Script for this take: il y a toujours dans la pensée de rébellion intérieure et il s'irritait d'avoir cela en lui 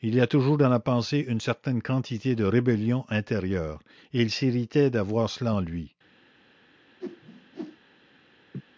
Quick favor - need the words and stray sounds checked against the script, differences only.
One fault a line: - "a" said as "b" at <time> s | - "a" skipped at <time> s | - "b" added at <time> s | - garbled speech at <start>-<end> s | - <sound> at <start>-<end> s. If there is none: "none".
- "une certaine quantité" added at 1.3 s
- whoosh at 7.0-7.8 s
- laugh at 8.5-8.6 s